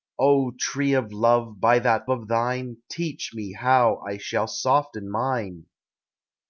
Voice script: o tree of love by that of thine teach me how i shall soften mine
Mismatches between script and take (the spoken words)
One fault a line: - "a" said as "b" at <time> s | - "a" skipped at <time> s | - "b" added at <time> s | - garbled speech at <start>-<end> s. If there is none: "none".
none